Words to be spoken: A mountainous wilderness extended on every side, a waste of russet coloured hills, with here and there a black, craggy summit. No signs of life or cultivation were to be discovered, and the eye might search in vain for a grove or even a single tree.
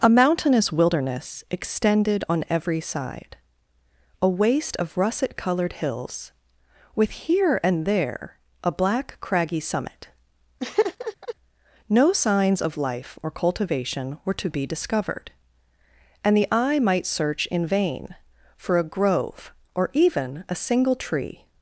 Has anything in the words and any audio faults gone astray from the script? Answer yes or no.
yes